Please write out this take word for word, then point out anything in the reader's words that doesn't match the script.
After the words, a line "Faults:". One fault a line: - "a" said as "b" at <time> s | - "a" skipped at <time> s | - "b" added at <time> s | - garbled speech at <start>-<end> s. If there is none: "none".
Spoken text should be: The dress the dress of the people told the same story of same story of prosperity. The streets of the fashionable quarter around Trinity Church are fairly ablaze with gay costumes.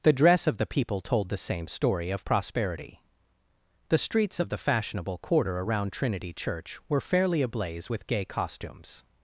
The dress of the people told the same story of prosperity. The streets of the fashionable quarter around Trinity Church were fairly ablaze with gay costumes.
Faults:
- "the dress" skipped at 0.5 s
- "same story of" skipped at 2.2 s
- "are" said as "were" at 6.9 s